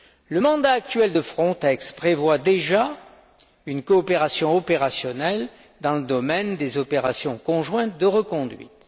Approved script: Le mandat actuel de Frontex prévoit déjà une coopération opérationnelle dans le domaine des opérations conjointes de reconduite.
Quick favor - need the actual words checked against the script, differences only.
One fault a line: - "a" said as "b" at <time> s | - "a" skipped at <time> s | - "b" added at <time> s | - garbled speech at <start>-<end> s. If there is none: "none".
none